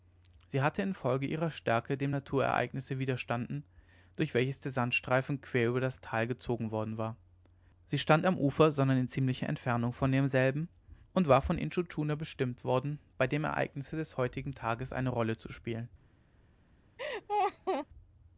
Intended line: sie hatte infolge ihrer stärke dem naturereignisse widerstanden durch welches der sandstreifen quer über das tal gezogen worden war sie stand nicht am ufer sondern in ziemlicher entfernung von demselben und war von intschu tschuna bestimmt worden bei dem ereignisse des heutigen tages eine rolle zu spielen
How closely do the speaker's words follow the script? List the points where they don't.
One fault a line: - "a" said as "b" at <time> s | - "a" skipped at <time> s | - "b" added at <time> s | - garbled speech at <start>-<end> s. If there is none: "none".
- "nicht" skipped at 8.3 s